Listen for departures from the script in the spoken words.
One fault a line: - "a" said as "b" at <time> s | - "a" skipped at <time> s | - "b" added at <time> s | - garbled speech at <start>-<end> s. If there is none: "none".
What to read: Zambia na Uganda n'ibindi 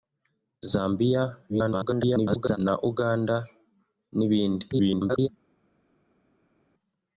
- garbled speech at 1.5-2.6 s
- garbled speech at 4.7-5.3 s